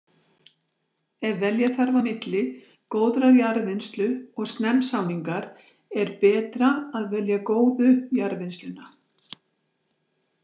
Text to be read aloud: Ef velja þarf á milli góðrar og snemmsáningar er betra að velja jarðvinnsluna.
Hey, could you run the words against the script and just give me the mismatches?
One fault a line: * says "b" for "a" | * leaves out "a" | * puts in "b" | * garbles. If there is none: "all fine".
* puts in "jarðvinnslu"
* puts in "góðu"